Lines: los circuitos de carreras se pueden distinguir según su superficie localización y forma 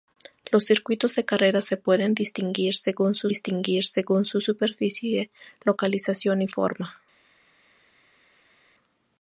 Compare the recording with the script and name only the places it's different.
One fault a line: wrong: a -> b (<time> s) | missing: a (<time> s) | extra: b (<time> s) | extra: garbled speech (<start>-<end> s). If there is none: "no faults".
extra: distinguir según su (3.2 s)